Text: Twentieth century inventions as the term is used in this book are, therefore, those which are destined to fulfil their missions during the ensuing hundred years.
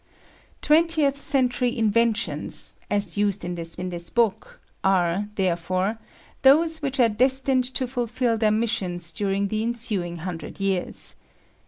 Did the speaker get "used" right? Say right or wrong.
wrong